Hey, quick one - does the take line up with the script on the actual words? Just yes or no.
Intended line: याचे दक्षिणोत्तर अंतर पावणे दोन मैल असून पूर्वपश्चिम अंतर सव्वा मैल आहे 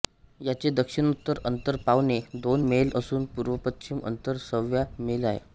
yes